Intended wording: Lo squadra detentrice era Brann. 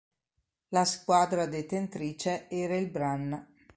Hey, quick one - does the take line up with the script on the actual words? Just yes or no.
no